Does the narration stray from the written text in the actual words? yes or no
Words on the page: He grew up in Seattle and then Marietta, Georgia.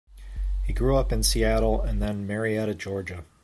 no